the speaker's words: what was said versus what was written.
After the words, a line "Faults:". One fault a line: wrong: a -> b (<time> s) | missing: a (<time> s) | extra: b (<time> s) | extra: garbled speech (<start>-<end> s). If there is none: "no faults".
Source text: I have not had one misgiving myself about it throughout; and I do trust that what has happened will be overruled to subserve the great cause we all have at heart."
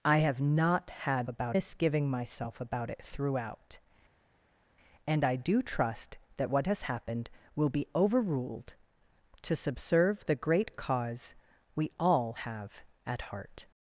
I have not had about misgiving myself about it throughout; and I do trust that what has happened will be overruled to subserve the great cause we all have at heart."
Faults:
wrong: one -> about (1.3 s)